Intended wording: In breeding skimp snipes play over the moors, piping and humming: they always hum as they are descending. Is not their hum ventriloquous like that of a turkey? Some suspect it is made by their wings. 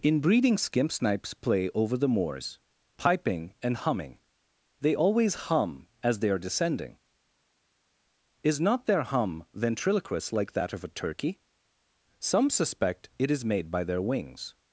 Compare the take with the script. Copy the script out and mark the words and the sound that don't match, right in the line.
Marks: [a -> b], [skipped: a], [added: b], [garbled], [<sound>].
In breeding skimp snipes play over the moors, piping and humming: they always hum as they are descending. Is not their hum ventriloquous like that of a turkey? Some suspect it is made by their wings.